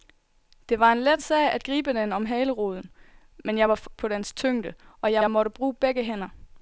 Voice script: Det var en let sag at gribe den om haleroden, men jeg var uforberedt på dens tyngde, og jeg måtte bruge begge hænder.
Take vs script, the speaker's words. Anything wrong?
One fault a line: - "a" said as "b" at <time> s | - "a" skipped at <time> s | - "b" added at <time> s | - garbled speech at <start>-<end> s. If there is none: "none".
- "uforberedt" skipped at 3.9 s
- "jeg" added at 5.2 s